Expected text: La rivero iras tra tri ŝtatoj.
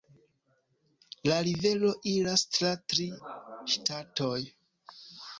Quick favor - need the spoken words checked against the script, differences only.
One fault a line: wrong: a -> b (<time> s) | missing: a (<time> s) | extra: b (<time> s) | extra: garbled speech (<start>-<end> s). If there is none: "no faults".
no faults